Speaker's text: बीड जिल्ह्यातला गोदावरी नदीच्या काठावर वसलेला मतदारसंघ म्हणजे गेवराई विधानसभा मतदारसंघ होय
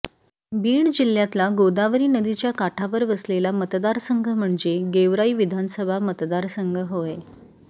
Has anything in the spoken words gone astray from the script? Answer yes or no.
no